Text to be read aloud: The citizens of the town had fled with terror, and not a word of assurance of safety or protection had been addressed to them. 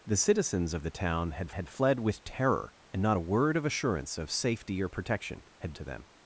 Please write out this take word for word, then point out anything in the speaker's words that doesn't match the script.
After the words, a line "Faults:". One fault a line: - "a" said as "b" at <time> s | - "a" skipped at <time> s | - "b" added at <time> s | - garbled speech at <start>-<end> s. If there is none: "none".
The citizens of the town had had fled with terror, and not a word of assurance of safety or protection had to them.
Faults:
- "had" added at 1.5 s
- "been addressed" skipped at 5.7 s